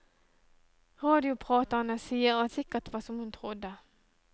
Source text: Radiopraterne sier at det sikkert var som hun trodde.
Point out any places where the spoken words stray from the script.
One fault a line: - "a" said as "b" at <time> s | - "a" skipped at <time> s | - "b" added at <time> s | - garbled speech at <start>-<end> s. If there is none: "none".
- "det" skipped at 2.5 s